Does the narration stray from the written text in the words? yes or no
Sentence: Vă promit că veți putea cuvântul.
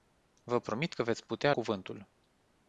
no